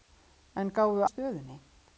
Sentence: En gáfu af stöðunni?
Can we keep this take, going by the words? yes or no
yes